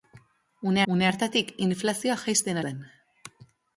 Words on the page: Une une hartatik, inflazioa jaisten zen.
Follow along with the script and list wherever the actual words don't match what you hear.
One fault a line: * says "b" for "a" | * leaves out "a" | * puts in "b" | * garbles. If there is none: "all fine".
all fine